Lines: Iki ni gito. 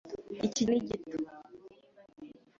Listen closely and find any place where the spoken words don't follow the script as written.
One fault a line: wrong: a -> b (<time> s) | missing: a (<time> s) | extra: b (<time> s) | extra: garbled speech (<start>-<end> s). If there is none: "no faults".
no faults